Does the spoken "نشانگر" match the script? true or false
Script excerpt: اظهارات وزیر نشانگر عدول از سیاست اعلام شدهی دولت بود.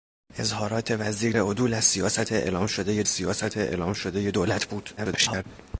false